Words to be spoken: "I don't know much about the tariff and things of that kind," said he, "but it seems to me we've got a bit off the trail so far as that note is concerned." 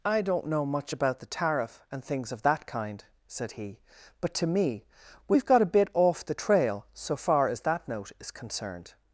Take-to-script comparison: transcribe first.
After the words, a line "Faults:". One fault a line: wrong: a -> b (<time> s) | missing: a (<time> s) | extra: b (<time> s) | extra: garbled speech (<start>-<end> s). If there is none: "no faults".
"I don't know much about the tariff and things of that kind," said he, "but to me we've got a bit off the trail so far as that note is concerned."
Faults:
missing: it seems (4.3 s)